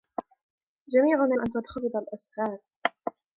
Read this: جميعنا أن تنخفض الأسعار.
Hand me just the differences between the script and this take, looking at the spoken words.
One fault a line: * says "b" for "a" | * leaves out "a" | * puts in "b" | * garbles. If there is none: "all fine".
all fine